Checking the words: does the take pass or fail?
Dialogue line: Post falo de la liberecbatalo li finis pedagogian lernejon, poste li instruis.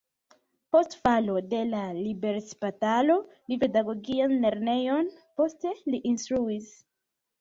fail